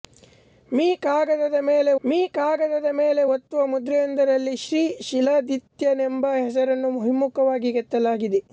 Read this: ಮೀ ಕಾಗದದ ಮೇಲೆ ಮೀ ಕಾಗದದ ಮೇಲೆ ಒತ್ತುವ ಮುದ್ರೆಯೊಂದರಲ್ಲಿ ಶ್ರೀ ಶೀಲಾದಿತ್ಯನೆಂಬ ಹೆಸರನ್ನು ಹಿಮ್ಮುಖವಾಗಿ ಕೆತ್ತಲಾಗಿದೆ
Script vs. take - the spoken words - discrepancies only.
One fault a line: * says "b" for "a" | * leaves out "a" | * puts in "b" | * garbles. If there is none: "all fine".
all fine